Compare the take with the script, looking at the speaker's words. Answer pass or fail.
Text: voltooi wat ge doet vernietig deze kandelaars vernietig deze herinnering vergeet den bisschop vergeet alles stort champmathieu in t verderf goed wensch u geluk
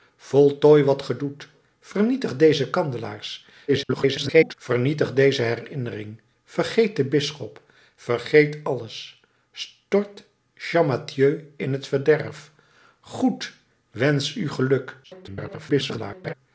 fail